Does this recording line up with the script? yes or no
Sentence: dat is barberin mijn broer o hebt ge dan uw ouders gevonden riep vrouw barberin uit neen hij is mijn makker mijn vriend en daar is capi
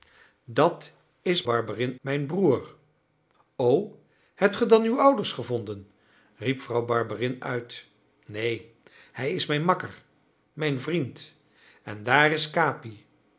yes